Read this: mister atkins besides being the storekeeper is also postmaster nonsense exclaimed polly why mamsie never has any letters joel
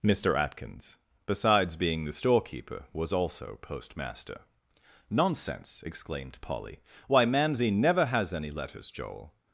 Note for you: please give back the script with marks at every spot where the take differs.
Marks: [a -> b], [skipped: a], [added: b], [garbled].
mister atkins besides being the storekeeper [is -> was] also postmaster nonsense exclaimed polly why mamsie never has any letters joel